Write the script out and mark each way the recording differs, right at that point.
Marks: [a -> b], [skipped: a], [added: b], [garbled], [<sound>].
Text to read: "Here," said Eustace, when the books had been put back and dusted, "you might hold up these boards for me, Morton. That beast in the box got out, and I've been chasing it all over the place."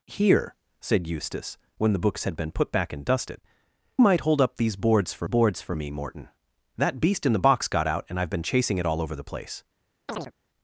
"Here," said Eustace, when the books had been put back and dusted, [skipped: "you] might hold up these boards for [added: boards for] me, Morton. That beast in the box got out, and I've been chasing it all over the place." [chirp]